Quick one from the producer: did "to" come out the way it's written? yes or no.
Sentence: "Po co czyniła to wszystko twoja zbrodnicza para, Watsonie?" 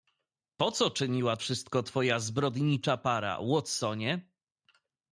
no